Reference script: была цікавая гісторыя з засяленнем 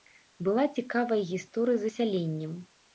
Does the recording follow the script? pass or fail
pass